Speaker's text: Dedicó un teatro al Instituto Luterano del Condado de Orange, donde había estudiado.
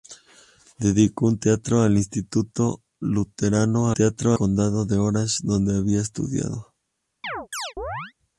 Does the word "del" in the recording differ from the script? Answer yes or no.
yes